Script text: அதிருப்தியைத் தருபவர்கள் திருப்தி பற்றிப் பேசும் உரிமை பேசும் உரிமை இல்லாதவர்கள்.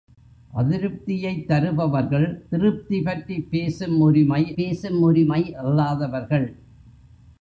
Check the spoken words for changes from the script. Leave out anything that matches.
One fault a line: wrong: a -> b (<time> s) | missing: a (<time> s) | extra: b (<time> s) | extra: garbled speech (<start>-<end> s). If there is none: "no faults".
no faults